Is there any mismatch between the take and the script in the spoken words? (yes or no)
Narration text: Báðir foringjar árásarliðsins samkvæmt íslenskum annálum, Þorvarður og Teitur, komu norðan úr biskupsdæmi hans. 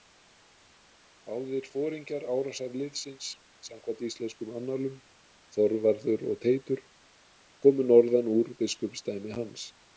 no